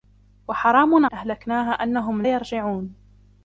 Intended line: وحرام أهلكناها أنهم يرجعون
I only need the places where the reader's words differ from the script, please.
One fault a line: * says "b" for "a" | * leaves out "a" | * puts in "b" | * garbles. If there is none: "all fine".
all fine